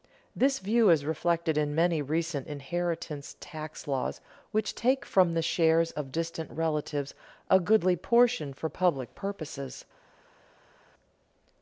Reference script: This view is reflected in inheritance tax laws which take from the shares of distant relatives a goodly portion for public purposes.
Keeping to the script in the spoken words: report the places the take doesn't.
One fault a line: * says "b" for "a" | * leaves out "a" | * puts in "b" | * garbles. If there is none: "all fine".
* puts in "many recent"